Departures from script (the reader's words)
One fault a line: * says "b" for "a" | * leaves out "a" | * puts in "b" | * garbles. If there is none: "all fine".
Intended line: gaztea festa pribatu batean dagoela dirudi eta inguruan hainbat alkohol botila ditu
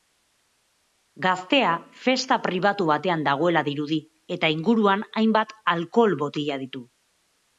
all fine